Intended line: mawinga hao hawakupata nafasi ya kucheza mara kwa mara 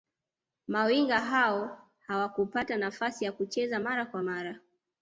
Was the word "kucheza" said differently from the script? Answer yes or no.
no